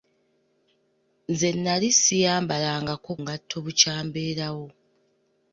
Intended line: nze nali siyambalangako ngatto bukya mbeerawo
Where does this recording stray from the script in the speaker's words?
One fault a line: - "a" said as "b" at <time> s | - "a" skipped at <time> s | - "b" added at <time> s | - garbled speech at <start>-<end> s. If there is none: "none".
none